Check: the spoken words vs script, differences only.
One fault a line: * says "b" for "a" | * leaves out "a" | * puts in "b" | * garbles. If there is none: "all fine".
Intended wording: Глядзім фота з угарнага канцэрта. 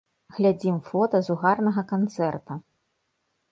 all fine